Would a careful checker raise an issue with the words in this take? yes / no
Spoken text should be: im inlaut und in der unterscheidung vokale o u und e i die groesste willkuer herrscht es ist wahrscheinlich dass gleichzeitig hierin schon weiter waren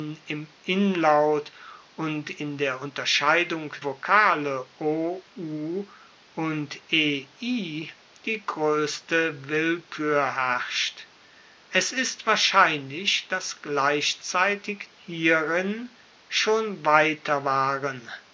no